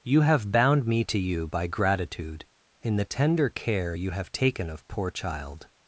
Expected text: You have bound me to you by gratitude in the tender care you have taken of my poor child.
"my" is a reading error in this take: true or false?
true